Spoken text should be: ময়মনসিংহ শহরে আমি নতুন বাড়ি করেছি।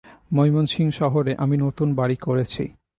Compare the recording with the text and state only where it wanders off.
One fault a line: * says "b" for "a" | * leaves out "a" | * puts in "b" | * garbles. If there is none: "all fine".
all fine